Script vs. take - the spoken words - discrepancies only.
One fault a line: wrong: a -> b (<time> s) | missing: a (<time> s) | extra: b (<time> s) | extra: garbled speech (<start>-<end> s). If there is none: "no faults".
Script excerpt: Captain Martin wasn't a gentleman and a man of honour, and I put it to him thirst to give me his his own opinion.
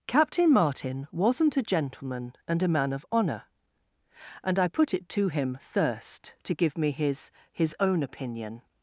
no faults